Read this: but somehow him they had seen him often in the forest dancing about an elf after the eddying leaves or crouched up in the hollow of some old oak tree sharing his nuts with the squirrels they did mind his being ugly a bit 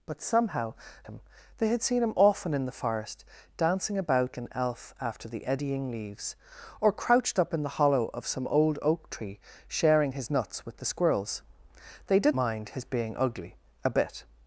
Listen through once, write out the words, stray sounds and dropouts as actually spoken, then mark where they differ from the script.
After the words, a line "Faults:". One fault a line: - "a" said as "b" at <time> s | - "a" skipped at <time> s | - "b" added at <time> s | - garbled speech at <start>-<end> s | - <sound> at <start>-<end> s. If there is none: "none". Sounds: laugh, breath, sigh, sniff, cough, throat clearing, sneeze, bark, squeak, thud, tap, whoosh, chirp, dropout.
but somehow him they had seen him often in the forest dancing about an elf after the eddying leaves or crouched up in the hollow of some old oak tree sharing his nuts with the squirrels they did mind his being ugly a bit
Faults:
none